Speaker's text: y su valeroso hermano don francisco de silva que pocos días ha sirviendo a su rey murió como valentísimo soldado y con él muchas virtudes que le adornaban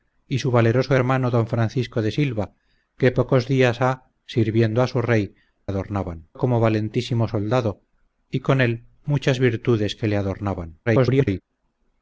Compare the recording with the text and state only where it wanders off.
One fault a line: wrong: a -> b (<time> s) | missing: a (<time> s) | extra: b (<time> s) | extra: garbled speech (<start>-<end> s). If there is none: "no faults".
wrong: murió -> adornaban (5.7 s)
extra: garbled speech (10.9-11.4 s)